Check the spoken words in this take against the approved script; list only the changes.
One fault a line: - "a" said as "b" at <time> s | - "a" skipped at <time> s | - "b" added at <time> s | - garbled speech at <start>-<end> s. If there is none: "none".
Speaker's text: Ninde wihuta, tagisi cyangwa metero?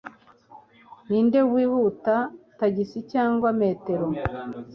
none